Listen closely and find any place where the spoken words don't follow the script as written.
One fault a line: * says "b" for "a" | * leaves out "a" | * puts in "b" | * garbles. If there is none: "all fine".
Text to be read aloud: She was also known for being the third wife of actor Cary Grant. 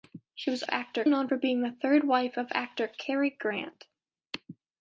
* says "actor" for "also"